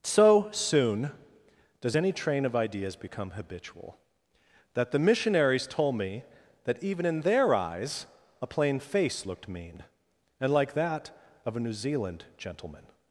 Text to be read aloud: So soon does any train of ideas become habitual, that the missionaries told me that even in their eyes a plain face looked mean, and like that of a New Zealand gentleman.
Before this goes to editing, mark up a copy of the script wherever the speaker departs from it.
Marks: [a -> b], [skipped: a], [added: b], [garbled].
So soon does any train of ideas become habitual, that the missionaries told me that even in their eyes a plain face looked mean, and like that of a New Zealand gentleman.